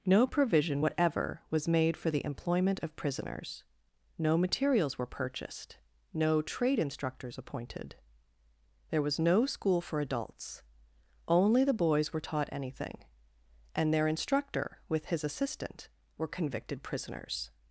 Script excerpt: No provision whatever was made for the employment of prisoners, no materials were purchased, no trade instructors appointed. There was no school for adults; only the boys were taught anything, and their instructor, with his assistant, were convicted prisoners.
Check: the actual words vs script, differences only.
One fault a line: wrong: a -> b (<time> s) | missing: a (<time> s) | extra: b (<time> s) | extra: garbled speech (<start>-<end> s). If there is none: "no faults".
no faults